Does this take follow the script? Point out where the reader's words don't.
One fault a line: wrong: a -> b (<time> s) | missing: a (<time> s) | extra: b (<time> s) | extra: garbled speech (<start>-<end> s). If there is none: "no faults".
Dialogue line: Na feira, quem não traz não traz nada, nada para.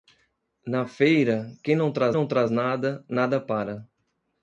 no faults